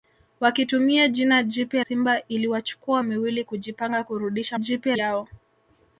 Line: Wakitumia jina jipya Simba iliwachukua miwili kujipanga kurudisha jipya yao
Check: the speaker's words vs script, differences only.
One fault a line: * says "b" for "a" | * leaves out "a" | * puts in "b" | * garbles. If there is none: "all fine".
all fine